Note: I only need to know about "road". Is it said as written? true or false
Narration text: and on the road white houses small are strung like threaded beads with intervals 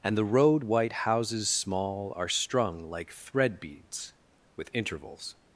true